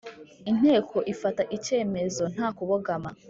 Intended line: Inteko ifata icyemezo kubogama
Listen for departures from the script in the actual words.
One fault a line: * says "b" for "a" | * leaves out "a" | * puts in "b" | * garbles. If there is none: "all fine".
* puts in "nta"